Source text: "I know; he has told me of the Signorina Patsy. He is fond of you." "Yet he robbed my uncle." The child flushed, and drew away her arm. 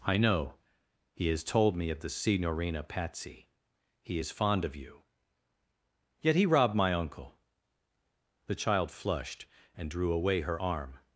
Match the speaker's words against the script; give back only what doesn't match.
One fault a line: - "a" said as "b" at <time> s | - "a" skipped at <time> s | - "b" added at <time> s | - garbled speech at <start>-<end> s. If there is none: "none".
none